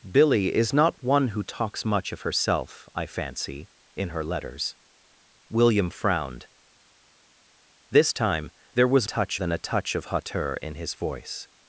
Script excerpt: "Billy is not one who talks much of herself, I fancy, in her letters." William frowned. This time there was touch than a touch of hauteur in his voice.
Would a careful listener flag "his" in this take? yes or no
no